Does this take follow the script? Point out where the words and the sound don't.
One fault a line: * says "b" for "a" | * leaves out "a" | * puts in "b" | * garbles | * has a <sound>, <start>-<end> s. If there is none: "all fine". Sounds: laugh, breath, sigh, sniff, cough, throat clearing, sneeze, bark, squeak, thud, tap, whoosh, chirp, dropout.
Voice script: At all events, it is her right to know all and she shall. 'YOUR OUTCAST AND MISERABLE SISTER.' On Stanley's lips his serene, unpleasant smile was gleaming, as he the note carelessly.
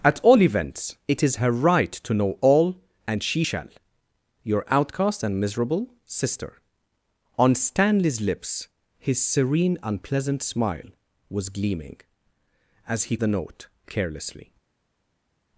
all fine